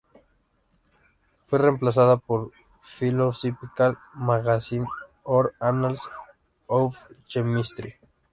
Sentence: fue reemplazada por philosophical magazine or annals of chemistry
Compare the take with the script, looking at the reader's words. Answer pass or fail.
pass